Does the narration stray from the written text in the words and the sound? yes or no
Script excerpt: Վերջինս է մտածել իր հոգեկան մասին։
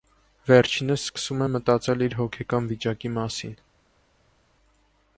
yes